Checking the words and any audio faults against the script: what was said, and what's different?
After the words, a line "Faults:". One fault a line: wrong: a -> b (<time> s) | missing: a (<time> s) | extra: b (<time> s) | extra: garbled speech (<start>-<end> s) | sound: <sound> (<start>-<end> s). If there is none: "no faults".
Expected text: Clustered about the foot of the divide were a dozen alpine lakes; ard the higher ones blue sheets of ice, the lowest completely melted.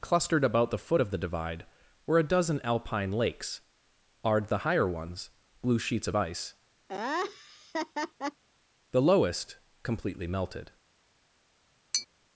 Clustered about the foot of the divide were a dozen alpine lakes; ard the higher ones blue sheets of ice, the lowest completely melted.
Faults:
sound: laugh (6.9-8.4 s)
sound: tap (11.9-12.1 s)